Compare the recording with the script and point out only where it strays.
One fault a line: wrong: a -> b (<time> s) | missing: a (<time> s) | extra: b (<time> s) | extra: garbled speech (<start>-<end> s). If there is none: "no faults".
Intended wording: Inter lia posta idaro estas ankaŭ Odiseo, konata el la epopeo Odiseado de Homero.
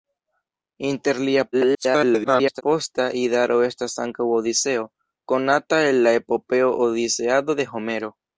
extra: garbled speech (1.5-2.6 s)